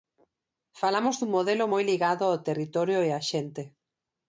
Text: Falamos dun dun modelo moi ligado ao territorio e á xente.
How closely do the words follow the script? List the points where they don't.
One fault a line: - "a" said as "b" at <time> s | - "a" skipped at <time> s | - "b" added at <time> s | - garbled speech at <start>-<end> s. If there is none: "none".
- "dun" skipped at 1.3 s